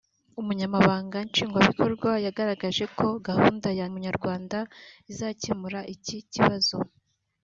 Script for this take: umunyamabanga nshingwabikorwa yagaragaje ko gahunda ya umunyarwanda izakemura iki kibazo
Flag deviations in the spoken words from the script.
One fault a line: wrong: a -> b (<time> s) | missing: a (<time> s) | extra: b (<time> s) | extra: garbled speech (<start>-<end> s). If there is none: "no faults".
no faults